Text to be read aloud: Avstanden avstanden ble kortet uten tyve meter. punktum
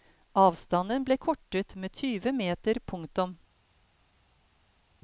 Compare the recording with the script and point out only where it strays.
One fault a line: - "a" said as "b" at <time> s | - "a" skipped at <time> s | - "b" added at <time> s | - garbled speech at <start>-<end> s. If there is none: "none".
- "avstanden" skipped at 1.0 s
- "uten" said as "med" at 1.7 s